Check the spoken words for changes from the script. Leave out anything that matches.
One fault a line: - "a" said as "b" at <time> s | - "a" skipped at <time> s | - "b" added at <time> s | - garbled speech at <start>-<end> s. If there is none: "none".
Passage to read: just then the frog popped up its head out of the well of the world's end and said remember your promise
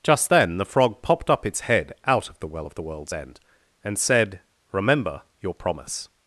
none